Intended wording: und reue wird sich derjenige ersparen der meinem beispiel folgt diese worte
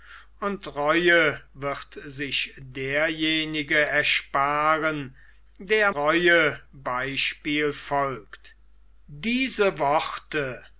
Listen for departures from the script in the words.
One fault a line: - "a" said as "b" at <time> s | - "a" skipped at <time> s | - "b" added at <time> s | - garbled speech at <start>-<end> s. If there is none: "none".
- "meinem" said as "reue" at 5.9 s